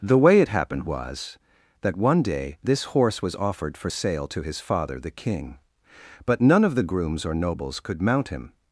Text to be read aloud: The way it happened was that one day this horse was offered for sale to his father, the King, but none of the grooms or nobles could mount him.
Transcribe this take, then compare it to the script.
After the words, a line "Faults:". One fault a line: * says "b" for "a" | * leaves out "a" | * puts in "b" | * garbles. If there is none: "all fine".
The way it happened was that one day this horse was offered for sale to his father, the King, but none of the grooms or nobles could mount him.
Faults:
all fine